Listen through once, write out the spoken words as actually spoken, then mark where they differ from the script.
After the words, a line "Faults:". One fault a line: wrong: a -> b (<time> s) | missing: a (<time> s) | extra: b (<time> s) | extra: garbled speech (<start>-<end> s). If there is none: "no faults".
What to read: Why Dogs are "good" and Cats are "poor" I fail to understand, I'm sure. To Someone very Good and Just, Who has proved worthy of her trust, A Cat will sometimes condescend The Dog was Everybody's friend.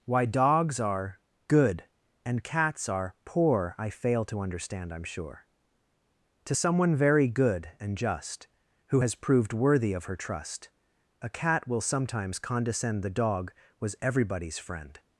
Why Dogs are "good" and Cats are "poor" I fail to understand, I'm sure. To Someone very Good and Just, Who has proved worthy of her trust, A Cat will sometimes condescend The Dog was Everybody's friend.
Faults:
no faults